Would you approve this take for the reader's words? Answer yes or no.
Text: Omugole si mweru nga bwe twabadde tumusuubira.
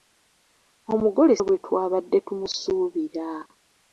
no